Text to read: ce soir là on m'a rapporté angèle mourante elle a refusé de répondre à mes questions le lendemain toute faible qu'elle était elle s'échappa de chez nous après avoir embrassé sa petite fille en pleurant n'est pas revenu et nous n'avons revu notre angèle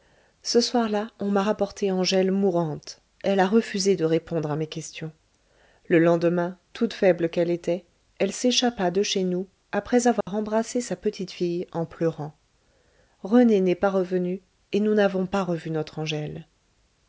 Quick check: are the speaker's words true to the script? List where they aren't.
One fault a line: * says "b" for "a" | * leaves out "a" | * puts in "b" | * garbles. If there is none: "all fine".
* puts in "rené"
* puts in "pas"